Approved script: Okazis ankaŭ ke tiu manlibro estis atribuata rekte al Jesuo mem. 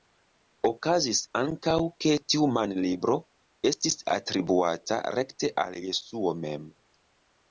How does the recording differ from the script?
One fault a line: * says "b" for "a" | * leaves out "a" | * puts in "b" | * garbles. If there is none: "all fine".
all fine